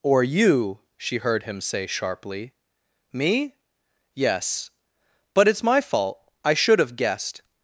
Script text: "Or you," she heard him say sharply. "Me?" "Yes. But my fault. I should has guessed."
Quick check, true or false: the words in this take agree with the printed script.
false